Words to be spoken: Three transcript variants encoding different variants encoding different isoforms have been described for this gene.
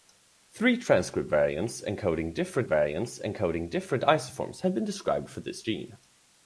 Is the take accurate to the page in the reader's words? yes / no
yes